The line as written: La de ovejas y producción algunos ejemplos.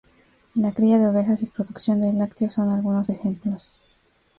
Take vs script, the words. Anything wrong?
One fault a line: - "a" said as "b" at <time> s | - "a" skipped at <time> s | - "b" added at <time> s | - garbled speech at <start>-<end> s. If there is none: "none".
- "cría" added at 0.7 s
- "de lácteos son" added at 2.0 s